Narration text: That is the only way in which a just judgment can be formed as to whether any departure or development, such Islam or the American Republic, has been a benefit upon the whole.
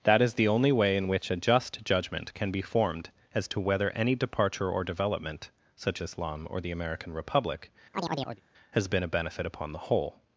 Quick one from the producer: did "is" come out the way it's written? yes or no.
yes